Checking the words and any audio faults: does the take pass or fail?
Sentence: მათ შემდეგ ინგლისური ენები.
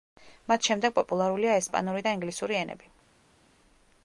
fail